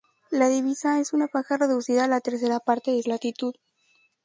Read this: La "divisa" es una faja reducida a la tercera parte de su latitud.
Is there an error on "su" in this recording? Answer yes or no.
yes